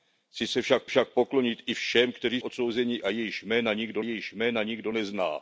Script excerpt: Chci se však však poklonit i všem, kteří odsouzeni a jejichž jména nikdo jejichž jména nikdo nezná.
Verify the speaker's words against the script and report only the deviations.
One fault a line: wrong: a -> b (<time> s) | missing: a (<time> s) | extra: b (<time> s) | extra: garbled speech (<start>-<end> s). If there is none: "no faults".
no faults